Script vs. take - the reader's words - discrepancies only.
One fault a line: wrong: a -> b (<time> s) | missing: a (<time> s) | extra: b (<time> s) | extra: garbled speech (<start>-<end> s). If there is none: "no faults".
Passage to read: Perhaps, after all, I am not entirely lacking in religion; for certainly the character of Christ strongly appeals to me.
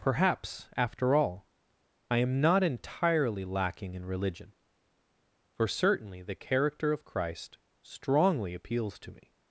no faults